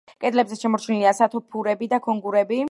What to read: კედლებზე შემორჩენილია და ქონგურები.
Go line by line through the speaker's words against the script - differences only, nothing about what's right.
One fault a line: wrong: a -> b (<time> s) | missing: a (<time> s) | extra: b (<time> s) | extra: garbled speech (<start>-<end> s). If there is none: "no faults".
extra: სათოფურები (1.2 s)